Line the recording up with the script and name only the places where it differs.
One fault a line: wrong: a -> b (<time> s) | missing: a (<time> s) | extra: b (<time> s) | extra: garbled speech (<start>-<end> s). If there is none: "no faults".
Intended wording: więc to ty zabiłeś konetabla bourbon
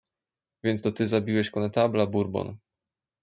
no faults